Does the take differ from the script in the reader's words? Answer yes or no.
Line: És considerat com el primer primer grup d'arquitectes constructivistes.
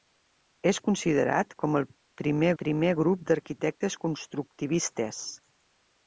no